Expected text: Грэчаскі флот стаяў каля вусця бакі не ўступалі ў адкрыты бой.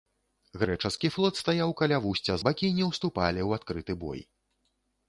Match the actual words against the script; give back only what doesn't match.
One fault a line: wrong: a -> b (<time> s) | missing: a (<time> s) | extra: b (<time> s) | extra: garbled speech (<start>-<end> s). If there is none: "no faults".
no faults